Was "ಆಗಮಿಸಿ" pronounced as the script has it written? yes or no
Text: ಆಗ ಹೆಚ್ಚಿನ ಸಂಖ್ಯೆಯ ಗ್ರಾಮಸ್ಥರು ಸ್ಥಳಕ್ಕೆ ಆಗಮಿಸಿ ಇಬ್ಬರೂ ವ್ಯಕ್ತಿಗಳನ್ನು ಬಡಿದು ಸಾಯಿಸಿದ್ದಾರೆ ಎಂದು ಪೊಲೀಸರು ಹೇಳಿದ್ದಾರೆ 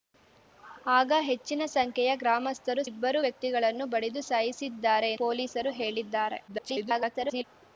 no